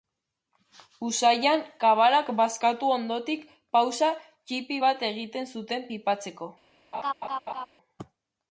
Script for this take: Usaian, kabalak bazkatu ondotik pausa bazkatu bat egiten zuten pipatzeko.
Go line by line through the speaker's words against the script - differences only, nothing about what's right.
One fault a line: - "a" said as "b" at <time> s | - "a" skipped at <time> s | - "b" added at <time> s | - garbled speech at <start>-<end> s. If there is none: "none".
- "bazkatu" said as "ttipi" at 4.2 s